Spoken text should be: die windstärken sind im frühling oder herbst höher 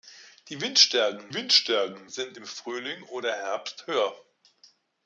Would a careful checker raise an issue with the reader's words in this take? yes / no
yes